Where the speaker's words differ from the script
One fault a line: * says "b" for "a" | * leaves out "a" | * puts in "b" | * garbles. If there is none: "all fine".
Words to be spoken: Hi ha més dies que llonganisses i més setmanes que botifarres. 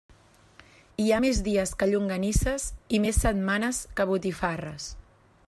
all fine